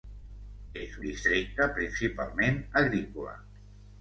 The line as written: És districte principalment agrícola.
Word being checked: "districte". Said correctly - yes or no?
yes